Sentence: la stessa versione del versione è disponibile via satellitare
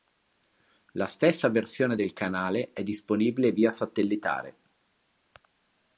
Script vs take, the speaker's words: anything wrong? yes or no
yes